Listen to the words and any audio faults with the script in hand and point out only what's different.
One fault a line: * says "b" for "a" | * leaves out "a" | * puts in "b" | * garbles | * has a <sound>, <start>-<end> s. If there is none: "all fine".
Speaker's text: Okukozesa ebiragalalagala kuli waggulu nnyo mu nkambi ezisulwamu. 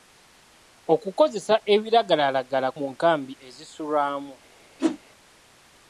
* leaves out "kuli waggulu nnyo"
* has a whoosh, 4.8-5.0 s